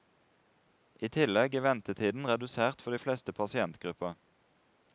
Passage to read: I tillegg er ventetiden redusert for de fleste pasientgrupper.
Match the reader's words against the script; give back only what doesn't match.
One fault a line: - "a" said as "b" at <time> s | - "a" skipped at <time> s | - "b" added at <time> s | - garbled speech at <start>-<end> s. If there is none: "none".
none